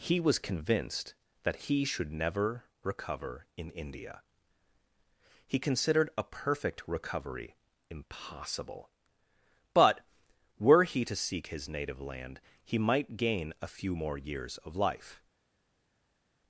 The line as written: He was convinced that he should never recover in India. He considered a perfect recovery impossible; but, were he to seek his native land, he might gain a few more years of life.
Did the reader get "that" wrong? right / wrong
right